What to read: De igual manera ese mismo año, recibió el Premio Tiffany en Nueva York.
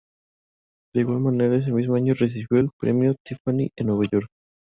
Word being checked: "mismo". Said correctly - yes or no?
yes